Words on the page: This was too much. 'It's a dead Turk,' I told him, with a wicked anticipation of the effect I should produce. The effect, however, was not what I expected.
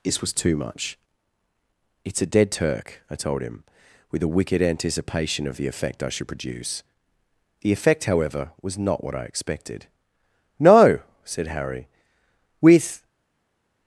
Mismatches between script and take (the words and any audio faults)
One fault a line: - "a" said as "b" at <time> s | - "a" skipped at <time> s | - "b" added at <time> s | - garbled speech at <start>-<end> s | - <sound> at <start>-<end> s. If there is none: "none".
- "No said Harry with" added at 10.6 s